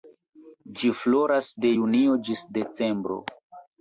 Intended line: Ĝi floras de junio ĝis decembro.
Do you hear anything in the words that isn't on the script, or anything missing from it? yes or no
no